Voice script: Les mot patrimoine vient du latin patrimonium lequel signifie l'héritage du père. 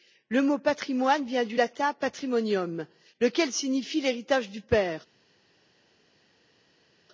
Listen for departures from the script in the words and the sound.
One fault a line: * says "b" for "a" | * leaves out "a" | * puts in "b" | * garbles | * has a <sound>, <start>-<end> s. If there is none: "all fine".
* says "Le" for "Les"